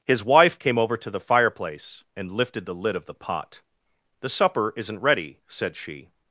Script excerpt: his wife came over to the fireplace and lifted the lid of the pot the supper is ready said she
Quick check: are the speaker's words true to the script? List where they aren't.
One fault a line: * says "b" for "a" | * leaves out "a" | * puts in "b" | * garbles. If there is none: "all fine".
* says "isn't" for "is"